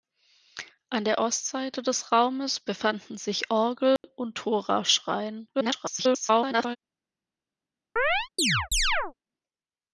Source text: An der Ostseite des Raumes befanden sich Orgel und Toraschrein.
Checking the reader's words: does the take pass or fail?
fail